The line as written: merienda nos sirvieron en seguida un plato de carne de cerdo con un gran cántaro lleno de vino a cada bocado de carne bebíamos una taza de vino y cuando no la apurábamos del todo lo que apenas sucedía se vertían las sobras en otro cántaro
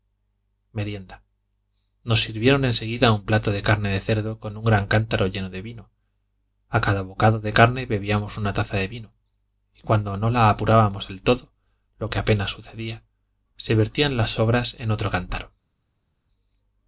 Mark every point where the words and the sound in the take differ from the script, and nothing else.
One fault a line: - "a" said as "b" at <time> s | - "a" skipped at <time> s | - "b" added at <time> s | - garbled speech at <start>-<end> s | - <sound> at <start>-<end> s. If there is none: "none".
none